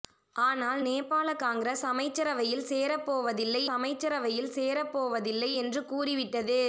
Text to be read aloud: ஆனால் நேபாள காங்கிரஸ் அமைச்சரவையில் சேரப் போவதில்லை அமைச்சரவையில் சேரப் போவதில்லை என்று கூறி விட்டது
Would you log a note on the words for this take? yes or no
no